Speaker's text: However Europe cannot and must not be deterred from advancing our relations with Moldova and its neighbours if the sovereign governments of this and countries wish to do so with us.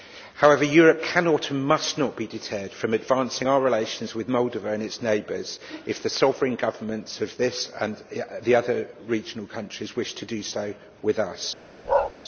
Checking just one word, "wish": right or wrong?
right